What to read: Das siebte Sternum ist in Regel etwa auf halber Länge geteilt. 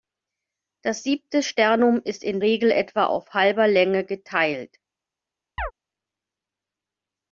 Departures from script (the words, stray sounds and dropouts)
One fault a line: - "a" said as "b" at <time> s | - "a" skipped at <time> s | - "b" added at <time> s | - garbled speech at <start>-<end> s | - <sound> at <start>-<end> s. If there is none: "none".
- chirp at 5.6-5.7 s